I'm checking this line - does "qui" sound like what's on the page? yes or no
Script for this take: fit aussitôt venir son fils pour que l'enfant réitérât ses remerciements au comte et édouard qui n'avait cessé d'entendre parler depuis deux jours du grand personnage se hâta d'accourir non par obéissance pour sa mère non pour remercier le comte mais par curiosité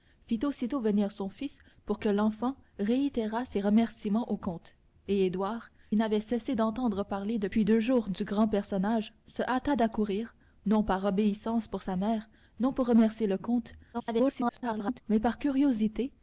no